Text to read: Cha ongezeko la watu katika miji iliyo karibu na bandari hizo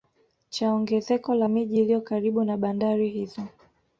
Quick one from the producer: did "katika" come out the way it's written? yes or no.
no